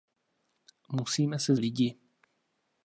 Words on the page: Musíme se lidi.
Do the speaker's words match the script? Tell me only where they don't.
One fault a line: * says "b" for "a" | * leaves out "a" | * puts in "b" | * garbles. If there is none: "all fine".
all fine